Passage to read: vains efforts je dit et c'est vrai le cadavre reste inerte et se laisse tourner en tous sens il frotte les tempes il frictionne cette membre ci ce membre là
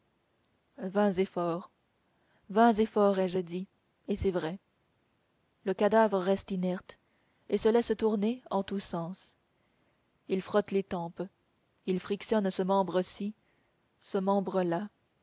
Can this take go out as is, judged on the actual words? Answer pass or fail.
fail